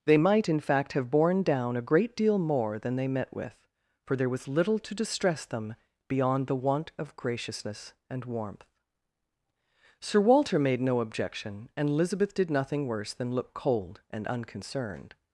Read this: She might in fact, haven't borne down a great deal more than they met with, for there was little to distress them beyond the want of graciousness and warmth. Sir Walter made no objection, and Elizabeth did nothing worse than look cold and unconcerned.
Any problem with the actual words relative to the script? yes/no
yes